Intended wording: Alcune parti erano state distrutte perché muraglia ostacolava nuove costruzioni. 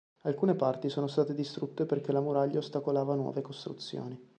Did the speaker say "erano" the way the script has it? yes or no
no